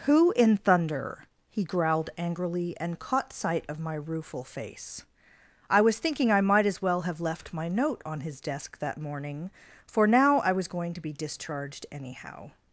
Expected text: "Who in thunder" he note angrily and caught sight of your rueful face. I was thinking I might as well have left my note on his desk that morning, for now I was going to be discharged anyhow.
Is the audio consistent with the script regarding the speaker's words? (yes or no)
no